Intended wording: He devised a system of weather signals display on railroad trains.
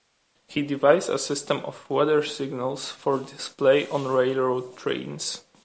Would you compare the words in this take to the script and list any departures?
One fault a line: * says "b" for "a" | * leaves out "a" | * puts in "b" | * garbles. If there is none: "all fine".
* puts in "for"